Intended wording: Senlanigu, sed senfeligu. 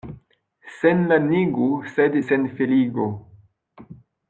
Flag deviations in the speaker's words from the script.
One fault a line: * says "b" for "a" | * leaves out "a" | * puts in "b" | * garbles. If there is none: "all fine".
all fine